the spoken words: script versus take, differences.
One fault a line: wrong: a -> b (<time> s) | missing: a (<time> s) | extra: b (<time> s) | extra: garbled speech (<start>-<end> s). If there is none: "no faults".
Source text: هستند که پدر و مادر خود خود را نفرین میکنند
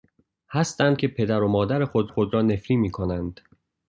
no faults